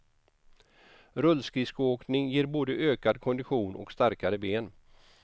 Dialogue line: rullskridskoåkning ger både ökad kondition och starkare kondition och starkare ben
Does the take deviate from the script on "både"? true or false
false